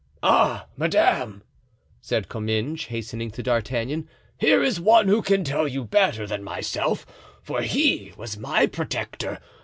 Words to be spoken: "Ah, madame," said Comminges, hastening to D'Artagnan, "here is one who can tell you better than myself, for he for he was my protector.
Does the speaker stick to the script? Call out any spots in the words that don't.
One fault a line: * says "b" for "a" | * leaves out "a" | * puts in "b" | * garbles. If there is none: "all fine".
* leaves out "for he"